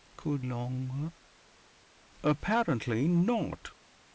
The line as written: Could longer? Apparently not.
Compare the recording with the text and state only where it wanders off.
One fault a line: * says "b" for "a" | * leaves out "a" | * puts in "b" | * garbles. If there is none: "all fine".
all fine